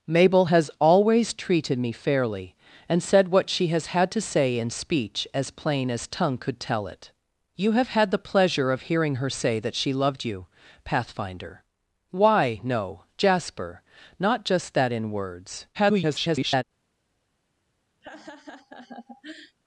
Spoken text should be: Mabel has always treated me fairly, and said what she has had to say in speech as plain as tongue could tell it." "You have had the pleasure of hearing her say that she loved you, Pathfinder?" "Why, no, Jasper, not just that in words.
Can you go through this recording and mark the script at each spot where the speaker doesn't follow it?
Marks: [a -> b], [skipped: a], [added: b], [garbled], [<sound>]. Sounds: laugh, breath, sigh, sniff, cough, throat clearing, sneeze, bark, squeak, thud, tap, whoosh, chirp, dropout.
Mabel has always treated me fairly, and said what she has had to say in speech as plain as tongue could tell it." "You have had the pleasure of hearing her say that she loved you, Pathfinder?" "Why, no, Jasper, not just that in words. [garbled] [laugh]